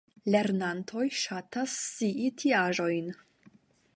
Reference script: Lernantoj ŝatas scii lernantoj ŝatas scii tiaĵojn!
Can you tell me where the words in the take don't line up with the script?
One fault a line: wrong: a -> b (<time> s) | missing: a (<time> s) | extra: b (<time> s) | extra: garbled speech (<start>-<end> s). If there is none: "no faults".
missing: lernantoj ŝatas scii (2.3 s)